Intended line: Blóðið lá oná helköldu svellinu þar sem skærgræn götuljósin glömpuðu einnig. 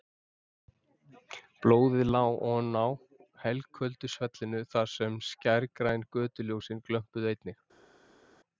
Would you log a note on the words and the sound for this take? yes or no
no